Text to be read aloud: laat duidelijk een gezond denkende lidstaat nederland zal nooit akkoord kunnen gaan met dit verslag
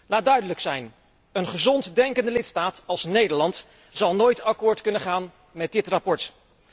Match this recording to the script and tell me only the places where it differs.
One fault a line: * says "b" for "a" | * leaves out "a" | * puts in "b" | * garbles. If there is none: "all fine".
* puts in "zijn"
* puts in "als"